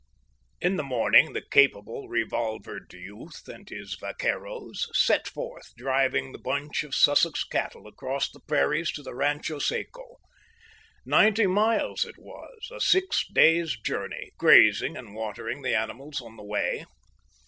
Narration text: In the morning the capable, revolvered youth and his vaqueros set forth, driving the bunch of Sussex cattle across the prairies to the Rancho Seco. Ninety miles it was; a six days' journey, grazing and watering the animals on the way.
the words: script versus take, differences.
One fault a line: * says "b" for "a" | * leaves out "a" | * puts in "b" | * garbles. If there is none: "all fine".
all fine